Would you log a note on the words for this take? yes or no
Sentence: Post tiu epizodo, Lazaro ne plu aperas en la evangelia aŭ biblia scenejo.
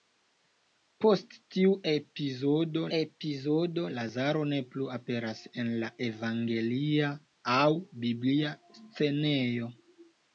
yes